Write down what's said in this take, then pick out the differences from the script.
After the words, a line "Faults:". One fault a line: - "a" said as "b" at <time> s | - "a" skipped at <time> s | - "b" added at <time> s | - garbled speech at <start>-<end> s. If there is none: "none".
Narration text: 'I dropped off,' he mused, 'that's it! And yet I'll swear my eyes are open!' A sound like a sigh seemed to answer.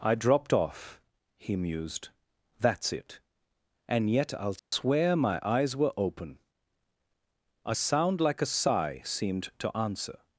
'I dropped off,' he mused, 'that's it! And yet I'll swear my eyes were open!' A sound like a sigh seemed to answer.
Faults:
- "are" said as "were" at 5.8 s